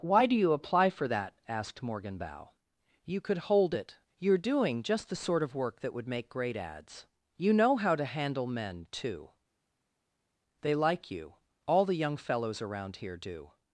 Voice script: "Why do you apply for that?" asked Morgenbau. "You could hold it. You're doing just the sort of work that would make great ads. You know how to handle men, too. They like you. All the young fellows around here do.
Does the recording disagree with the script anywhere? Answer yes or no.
no